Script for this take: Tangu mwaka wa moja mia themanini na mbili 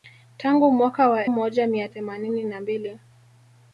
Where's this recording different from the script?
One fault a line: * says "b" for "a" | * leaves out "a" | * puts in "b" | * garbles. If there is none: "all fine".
all fine